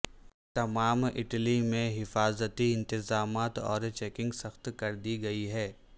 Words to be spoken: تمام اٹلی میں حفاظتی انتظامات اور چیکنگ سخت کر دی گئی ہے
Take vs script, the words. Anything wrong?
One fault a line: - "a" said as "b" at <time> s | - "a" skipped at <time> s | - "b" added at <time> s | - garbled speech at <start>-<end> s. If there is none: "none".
none